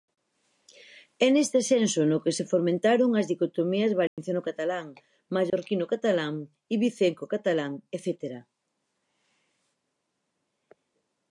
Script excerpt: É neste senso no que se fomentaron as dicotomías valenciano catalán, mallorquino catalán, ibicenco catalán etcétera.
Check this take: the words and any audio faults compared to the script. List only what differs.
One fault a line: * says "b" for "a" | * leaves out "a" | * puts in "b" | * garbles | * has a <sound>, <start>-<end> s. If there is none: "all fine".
* has a dropout, 4.1-4.2 s
* has a dropout, 5.5-5.5 s